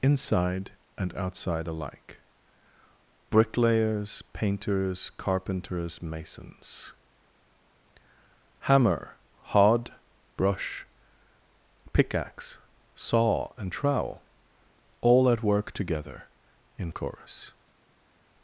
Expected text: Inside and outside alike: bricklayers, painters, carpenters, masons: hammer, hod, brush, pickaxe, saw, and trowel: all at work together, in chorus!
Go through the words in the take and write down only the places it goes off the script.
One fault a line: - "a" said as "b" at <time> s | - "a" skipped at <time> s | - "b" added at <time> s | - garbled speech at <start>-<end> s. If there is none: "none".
none